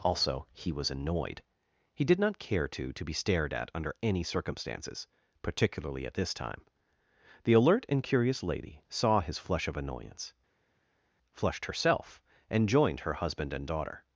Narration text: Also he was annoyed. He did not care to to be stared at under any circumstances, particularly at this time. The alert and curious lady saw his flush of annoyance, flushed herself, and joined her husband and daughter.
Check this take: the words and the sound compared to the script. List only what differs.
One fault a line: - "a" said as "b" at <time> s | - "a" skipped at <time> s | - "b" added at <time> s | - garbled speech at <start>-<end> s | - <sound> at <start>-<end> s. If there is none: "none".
none